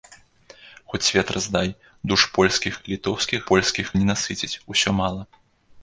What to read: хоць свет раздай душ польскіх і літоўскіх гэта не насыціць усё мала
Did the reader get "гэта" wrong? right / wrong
wrong